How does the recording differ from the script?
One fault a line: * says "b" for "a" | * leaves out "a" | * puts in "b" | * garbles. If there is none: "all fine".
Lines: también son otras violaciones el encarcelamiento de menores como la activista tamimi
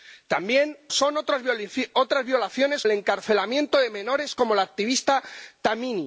all fine